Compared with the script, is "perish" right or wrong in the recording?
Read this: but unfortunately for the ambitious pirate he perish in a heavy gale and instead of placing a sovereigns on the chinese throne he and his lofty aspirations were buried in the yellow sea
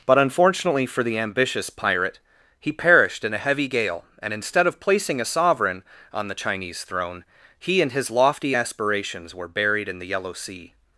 wrong